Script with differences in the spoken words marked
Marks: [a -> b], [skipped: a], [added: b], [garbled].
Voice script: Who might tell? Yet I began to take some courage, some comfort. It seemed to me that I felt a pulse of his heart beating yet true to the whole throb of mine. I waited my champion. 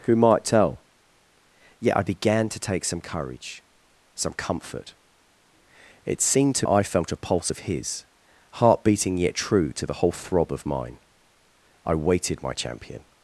Who might tell? Yet I began to take some courage, some comfort. It seemed to [skipped: me that] I felt a pulse of his heart beating yet true to the whole throb of mine. I waited my champion.